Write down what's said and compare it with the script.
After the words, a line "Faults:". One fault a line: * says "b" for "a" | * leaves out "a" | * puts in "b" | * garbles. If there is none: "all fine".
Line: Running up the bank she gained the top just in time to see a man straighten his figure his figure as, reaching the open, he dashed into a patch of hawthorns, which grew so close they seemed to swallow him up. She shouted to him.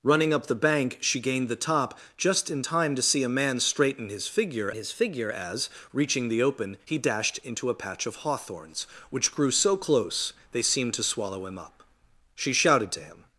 Running up the bank she gained the top just in time to see a man straighten his figure his figure as, reaching the open, he dashed into a patch of hawthorns, which grew so close they seemed to swallow him up. She shouted to him.
Faults:
all fine